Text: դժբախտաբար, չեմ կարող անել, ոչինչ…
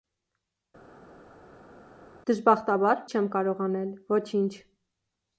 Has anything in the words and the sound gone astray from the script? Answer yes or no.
no